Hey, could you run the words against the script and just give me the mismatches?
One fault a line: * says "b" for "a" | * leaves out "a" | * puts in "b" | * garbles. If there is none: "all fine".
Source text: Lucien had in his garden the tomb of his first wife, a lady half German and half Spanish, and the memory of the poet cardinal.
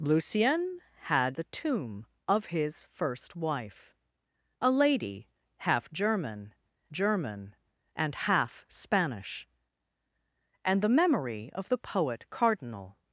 * leaves out "in his garden"
* puts in "German"